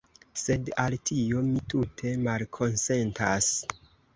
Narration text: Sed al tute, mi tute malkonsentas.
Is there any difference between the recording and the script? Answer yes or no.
yes